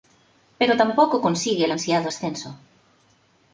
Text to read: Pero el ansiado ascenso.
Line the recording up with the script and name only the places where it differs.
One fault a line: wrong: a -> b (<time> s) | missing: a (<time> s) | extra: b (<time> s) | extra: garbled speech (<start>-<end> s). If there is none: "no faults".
extra: tampoco consigue (0.8 s)